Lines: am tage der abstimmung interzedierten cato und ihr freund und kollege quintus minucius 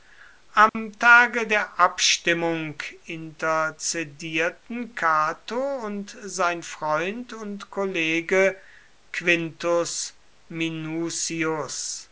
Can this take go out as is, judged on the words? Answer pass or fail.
fail